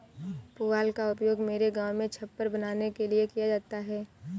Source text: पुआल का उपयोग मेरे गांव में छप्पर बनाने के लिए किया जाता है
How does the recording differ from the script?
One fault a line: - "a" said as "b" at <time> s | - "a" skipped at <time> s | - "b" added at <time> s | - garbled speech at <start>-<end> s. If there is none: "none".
none